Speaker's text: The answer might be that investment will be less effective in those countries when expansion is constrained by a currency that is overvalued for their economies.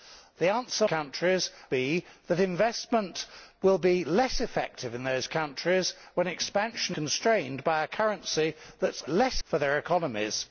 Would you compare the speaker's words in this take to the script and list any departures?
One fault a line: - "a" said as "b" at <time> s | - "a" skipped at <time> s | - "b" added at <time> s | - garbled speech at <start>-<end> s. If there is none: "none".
- "might" said as "countries" at 0.8 s
- "is" skipped at 7.0 s
- "overvalued" said as "less" at 9.1 s